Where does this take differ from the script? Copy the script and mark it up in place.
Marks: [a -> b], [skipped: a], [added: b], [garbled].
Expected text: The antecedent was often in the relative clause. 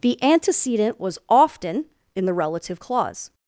The antecedent was often in the relative clause.